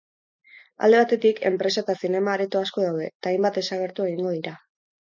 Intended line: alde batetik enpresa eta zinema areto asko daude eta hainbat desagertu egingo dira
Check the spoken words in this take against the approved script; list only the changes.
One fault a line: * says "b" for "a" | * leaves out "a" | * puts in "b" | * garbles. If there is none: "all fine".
all fine